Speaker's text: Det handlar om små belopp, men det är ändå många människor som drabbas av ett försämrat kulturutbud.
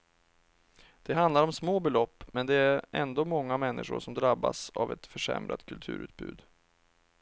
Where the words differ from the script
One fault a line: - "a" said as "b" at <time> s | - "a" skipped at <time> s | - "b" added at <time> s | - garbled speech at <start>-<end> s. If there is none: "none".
none